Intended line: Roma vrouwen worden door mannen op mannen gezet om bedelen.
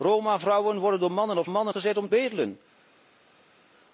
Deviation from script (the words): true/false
false